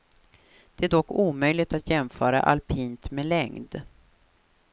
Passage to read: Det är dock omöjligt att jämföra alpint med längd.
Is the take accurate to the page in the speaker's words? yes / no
yes